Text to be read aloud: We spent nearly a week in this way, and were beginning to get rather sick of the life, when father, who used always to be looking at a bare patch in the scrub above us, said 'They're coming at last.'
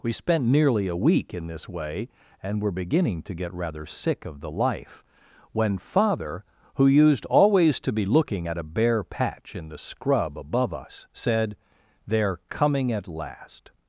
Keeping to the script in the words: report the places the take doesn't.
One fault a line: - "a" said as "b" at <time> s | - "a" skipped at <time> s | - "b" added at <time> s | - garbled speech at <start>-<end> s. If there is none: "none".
none